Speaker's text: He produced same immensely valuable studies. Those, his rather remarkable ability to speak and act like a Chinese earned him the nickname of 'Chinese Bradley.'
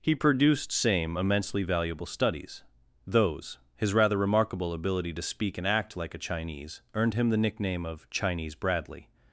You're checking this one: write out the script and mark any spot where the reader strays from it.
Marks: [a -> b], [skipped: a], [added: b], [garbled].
He produced same immensely valuable studies. Those, his rather remarkable ability to speak and act like a Chinese earned him the nickname of 'Chinese Bradley.'